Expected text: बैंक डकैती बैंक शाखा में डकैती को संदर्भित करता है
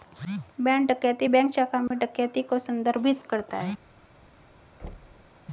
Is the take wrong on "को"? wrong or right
right